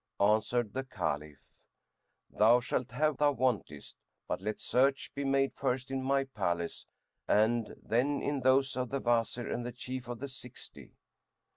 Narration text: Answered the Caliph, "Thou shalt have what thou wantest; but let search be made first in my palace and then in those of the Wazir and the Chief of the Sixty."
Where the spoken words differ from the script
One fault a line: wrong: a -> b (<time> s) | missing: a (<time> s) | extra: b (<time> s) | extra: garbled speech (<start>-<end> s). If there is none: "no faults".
missing: what (3.2 s)